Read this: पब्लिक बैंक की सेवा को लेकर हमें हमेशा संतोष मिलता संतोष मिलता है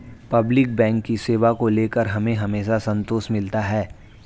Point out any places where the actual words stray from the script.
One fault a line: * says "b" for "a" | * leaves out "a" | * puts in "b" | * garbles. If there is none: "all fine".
* leaves out "संतोष मिलता"